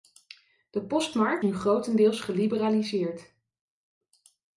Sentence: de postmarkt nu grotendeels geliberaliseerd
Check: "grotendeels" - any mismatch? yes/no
no